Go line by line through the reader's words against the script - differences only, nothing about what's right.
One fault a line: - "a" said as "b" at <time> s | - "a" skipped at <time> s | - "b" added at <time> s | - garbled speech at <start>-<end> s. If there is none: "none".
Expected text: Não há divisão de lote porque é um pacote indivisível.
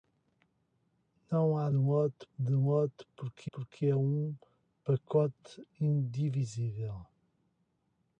- "divisão" said as "lote" at 1.7 s
- "porque" added at 3.5 s